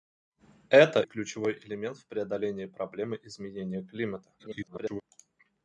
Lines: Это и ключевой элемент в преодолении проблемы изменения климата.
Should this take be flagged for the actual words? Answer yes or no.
yes